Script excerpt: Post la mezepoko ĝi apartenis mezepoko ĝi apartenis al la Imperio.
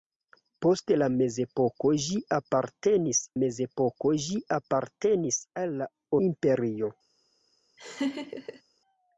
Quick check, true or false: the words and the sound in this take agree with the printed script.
false